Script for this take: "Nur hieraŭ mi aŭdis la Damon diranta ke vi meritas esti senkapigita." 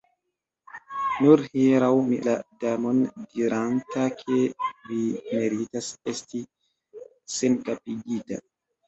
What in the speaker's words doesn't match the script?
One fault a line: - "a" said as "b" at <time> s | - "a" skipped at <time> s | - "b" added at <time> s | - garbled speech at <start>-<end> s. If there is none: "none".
- "aŭdis" skipped at 2.2 s